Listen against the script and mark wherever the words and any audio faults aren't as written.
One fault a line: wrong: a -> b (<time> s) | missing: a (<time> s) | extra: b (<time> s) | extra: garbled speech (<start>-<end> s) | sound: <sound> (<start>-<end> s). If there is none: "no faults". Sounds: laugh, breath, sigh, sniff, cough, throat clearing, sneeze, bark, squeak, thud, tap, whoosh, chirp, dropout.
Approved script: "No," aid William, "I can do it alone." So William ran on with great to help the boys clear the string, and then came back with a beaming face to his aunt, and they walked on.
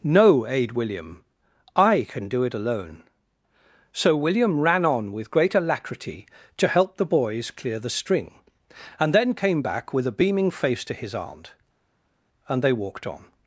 extra: alacrity (5.5 s)